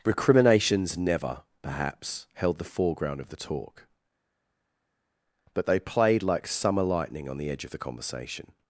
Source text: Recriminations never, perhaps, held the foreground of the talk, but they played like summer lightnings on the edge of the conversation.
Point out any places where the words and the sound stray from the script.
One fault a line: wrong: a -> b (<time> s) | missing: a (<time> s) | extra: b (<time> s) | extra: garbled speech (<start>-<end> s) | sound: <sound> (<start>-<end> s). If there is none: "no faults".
wrong: lightnings -> lightning (6.8 s)